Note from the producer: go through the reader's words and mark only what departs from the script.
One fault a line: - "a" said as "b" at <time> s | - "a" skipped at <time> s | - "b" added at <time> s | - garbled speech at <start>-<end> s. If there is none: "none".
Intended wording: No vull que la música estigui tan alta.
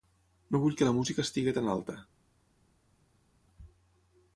none